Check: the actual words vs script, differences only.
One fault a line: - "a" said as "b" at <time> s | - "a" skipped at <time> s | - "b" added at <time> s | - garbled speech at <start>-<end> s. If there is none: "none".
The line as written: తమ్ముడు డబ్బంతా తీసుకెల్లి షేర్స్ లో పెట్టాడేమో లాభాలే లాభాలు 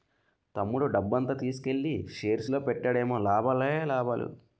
none